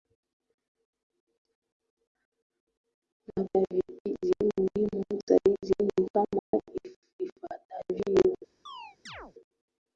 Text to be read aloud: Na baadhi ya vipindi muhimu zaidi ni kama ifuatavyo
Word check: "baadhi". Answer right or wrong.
wrong